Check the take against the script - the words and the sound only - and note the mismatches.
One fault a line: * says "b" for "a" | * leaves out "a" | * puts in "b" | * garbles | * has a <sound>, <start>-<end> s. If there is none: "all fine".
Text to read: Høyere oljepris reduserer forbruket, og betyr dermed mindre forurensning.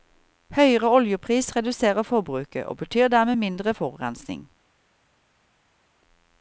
all fine